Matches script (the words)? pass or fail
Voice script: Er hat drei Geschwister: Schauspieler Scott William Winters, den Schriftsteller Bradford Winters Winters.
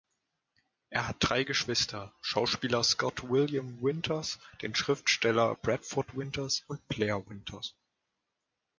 fail